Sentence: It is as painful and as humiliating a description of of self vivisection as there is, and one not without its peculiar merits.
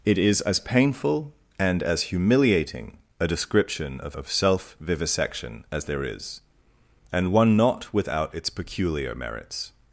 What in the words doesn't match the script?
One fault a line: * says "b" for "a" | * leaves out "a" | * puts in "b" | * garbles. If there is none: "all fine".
all fine